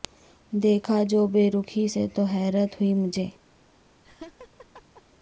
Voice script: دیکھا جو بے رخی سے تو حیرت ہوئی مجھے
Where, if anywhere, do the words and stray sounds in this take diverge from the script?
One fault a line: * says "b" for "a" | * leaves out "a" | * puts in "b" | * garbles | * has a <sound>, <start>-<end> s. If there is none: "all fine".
* has a laugh, 4.0-5.0 s